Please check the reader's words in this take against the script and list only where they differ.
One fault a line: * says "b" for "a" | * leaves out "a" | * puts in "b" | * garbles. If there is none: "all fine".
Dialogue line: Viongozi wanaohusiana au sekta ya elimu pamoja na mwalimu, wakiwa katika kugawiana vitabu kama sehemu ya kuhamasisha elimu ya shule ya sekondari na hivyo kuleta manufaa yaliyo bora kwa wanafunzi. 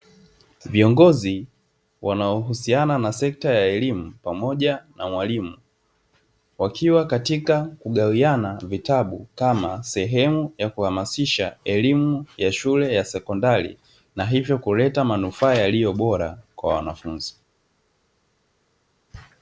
* says "na" for "au"